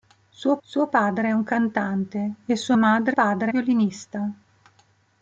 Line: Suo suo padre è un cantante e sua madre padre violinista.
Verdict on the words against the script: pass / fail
pass